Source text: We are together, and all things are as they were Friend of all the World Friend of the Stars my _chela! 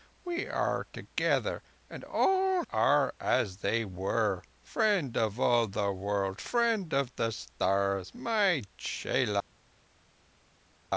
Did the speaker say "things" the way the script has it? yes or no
no